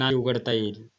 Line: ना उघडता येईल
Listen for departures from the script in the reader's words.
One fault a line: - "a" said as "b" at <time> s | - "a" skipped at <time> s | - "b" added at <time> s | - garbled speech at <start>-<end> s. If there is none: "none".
none